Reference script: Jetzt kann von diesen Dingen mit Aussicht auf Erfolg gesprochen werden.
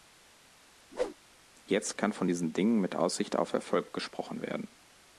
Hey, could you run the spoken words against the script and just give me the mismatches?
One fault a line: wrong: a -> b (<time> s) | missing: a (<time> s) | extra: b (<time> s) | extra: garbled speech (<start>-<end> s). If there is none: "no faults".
no faults